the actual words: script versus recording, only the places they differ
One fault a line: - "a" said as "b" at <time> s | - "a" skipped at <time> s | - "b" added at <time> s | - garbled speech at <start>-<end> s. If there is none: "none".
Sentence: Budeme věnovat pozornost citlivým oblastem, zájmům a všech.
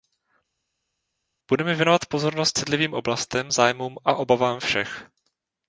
- "obavám" added at 4.1 s